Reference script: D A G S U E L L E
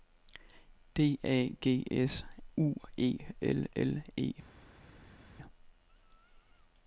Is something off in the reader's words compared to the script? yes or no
no